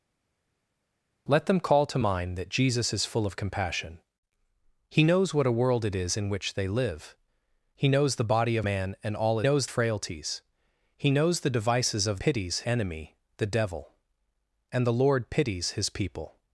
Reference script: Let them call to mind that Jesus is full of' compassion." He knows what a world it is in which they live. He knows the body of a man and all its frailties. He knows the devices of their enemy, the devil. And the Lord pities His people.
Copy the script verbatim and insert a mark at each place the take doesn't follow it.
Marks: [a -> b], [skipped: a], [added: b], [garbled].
Let them call to mind that Jesus is full of' compassion." He knows what a world it is in which they live. He knows the body of [skipped: a] man and all [its -> knows] frailties. He knows the devices of [their -> pities] enemy, the devil. And the Lord pities His people.